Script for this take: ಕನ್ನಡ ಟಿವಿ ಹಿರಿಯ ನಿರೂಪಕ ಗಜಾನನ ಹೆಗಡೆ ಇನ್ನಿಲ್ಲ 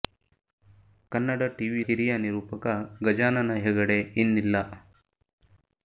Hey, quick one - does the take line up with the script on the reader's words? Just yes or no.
yes